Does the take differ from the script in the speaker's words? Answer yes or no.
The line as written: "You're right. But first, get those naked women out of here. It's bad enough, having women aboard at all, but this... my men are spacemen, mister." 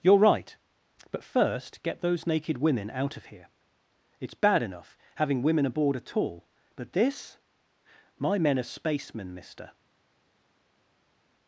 no